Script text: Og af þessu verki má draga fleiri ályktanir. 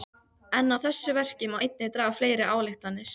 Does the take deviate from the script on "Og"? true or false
true